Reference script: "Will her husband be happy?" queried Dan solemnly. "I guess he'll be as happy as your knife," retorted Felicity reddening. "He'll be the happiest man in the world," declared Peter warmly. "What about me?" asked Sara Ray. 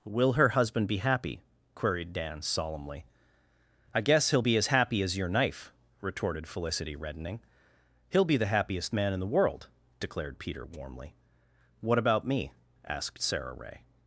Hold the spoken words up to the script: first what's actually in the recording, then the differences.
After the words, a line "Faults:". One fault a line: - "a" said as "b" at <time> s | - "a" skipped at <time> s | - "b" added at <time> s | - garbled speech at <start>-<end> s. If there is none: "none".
"Will her husband be happy?" queried Dan solemnly. "I guess he'll be as happy as your knife," retorted Felicity reddening. "He'll be the happiest man in the world," declared Peter warmly. "What about me?" asked Sara Ray.
Faults:
none